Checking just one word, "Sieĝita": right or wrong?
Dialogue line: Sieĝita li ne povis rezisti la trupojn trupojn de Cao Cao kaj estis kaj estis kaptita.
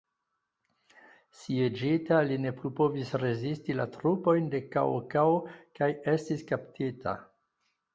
right